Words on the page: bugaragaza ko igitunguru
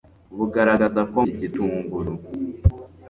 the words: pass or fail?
pass